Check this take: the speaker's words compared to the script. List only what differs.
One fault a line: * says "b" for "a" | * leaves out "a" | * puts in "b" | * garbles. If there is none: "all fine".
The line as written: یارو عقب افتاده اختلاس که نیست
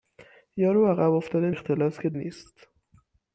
all fine